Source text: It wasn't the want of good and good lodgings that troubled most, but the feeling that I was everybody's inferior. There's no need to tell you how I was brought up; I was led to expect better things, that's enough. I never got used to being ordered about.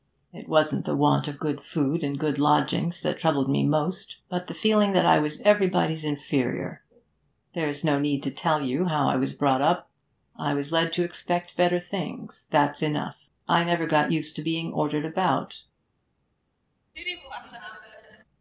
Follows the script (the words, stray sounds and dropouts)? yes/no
no